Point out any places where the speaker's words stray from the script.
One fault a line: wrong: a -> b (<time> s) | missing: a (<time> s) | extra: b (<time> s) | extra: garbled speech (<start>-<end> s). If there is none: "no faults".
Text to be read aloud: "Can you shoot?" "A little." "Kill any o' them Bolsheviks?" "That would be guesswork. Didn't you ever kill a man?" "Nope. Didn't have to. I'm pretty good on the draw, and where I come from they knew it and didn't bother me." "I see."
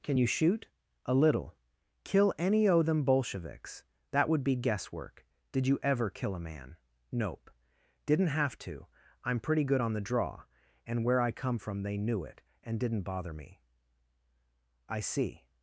wrong: Didn't -> Did (5.5 s)